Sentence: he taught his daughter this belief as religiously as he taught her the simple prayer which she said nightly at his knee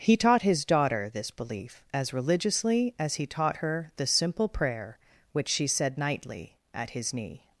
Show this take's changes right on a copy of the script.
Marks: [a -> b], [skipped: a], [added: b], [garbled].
he taught his daughter this belief as religiously as he taught her the simple prayer which she said nightly at his knee